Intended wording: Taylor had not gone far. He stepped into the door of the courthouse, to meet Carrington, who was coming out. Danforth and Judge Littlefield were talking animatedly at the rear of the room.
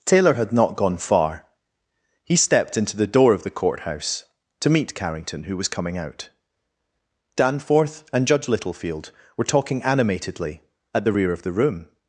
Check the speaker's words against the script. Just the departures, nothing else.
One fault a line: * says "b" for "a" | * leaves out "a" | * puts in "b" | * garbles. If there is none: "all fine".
all fine